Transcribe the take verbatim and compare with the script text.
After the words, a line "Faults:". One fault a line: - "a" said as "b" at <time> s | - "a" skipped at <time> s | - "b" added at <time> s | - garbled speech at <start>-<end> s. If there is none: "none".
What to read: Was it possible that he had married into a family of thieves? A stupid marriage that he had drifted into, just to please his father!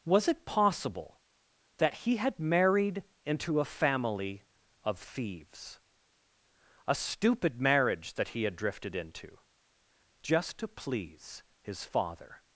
Was it possible that he had married into a family of thieves? A stupid marriage that he had drifted into, just to please his father!
Faults:
none